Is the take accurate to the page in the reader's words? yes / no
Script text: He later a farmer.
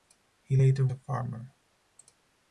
yes